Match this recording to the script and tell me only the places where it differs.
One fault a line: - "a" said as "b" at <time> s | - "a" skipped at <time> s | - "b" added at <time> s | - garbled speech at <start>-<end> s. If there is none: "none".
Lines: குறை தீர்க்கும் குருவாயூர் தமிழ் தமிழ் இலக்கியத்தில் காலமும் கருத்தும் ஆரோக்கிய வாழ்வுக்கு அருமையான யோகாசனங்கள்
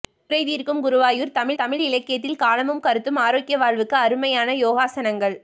none